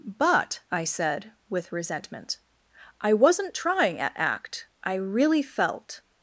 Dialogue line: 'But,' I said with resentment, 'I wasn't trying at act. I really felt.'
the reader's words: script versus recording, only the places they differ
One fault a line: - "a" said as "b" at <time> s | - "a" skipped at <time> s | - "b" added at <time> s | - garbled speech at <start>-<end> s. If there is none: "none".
none